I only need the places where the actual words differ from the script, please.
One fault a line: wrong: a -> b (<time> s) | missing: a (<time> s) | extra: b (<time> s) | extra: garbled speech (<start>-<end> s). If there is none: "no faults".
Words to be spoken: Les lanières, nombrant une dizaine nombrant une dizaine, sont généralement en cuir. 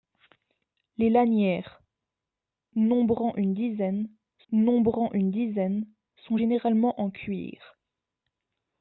no faults